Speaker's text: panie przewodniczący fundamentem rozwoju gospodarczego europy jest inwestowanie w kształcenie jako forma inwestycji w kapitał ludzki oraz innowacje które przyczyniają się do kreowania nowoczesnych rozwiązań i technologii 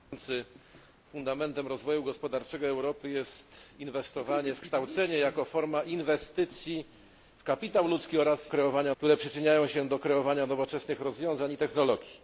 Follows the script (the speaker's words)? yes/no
no